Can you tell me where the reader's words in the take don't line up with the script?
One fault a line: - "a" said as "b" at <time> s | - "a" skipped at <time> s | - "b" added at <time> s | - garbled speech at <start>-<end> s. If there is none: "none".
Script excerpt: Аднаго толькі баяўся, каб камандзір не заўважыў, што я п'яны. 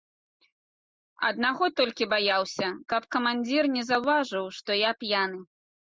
none